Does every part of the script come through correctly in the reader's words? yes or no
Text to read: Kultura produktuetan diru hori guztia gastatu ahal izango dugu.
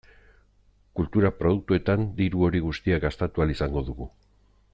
yes